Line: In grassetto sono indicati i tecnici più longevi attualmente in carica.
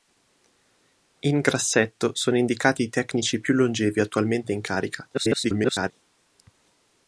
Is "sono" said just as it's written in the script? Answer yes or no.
yes